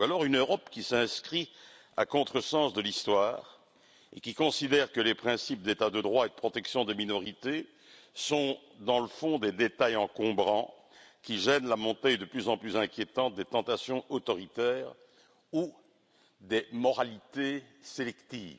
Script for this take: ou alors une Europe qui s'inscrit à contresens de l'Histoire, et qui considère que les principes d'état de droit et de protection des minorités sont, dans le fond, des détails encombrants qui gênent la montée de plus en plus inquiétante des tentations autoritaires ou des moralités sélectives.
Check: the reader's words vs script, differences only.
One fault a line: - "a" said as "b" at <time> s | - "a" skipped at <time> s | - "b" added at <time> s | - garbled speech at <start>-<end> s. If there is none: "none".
none